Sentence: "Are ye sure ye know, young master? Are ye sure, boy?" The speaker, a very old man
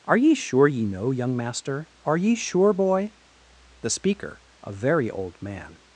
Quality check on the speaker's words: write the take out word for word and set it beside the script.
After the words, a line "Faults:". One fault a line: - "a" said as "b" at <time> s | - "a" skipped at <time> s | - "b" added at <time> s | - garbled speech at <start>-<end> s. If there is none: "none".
"Are ye sure ye know, young master? Are ye sure, boy?" The speaker, a very old man
Faults:
none